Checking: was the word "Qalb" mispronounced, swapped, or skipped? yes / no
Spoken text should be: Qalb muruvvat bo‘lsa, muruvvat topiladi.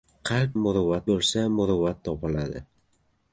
no